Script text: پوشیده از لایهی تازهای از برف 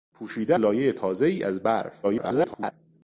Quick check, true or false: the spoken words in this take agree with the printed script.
false